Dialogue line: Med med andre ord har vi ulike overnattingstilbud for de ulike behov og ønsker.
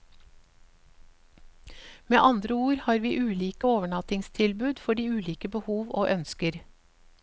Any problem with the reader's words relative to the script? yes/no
yes